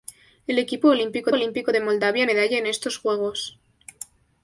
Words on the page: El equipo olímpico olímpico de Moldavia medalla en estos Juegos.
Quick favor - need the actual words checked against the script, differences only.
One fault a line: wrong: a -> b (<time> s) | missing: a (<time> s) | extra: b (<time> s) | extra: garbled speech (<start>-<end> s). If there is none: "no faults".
no faults